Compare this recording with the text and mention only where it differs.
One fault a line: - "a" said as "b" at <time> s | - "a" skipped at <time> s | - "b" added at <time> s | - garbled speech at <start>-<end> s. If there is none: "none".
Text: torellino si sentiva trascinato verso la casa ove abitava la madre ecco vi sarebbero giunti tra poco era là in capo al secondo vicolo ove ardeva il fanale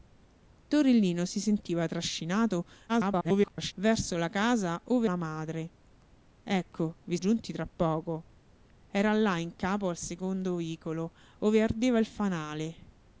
- garbled speech at 2.9-3.7 s
- "abitava" skipped at 5.1 s
- "sarebbero" skipped at 7.2 s